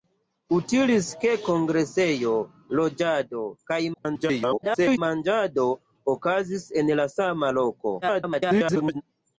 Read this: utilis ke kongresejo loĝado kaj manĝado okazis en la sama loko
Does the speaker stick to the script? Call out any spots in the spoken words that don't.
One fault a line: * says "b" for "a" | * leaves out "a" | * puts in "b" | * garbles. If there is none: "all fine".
* garbles
* garbles